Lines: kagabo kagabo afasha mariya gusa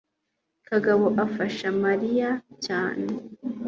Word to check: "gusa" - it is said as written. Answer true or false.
false